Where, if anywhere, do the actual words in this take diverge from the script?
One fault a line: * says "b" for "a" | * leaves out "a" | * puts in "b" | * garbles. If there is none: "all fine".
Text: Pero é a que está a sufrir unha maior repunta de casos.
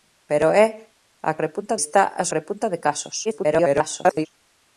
* says "repunta" for "que"
* leaves out "sufrir unha maior"
* garbles